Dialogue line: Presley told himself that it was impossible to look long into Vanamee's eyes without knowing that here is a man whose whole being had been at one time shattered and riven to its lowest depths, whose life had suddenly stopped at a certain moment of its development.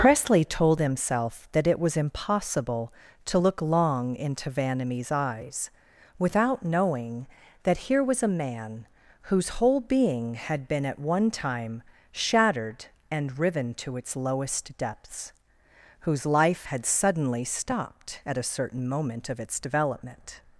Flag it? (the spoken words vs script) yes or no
yes